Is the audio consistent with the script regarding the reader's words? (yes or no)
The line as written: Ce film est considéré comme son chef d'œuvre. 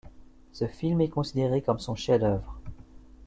yes